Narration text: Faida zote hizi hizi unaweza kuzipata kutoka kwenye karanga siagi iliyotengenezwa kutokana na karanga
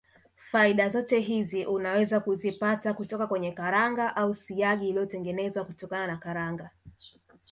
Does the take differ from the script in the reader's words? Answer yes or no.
yes